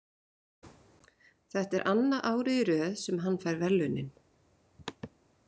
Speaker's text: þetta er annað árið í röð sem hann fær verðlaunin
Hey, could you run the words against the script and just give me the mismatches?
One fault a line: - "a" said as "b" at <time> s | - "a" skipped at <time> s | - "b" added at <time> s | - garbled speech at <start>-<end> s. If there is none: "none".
none